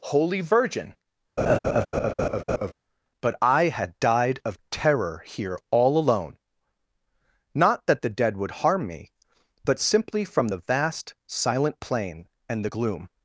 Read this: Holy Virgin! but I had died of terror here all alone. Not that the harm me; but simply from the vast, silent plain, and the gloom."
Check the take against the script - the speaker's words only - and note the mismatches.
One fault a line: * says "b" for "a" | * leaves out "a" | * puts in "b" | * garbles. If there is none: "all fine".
* puts in "dead would"